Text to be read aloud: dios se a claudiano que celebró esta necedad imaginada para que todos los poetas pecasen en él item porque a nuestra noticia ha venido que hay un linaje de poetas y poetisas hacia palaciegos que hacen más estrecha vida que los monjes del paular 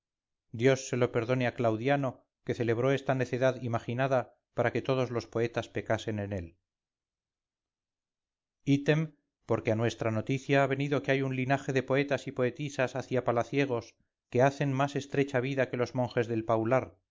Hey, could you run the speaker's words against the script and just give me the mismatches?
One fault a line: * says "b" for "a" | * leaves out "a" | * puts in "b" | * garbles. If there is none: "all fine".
* puts in "lo perdone"